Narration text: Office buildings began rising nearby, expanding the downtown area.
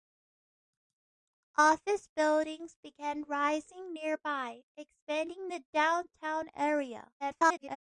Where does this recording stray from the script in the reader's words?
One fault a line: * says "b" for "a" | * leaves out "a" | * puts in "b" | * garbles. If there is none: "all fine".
* garbles